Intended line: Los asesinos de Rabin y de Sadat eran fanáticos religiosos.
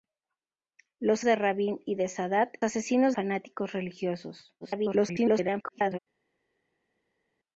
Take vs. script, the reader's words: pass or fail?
fail